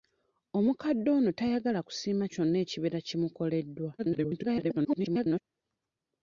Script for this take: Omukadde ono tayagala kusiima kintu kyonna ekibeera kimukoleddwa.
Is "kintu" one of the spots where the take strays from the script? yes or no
yes